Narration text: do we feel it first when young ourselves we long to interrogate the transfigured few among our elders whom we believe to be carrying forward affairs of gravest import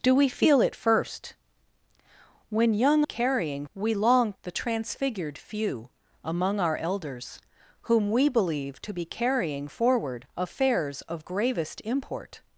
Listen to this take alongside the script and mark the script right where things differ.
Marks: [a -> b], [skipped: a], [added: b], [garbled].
do we feel it first when young [ourselves -> carrying] we long [skipped: to interrogate] the transfigured few among our elders whom we believe to be carrying forward affairs of gravest import